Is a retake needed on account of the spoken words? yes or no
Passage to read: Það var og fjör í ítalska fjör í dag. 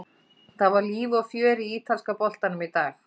yes